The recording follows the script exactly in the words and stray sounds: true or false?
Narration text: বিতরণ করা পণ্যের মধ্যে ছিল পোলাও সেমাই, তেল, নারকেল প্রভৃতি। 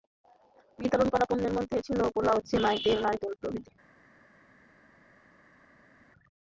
true